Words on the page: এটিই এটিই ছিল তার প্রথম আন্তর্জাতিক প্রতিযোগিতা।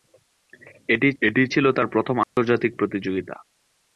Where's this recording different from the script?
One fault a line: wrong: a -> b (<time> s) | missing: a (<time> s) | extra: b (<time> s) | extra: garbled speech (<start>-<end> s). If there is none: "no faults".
no faults